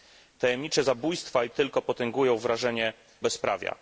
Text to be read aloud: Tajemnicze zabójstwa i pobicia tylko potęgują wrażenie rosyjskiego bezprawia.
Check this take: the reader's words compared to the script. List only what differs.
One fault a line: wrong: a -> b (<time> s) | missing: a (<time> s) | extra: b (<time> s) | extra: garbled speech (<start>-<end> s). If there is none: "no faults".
missing: pobicia (1.5 s)
missing: rosyjskiego (2.9 s)